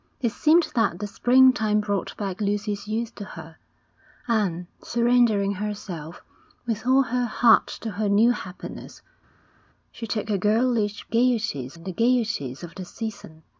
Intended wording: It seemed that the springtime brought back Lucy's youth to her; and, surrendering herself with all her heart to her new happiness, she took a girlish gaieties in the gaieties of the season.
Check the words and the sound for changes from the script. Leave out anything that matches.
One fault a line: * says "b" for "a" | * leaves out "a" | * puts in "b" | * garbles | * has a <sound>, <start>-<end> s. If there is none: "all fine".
all fine